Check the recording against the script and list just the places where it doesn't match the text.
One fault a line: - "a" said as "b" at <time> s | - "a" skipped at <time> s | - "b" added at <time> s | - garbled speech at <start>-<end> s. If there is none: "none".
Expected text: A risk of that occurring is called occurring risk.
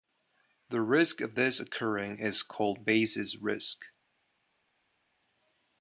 - "A" said as "The" at 0.7 s
- "that" said as "this" at 1.3 s
- "occurring" said as "basis" at 2.8 s